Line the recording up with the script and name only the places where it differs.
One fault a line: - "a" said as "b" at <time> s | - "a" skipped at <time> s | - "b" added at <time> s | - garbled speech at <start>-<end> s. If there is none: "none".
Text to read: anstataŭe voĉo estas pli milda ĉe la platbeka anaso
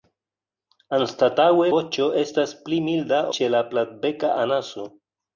none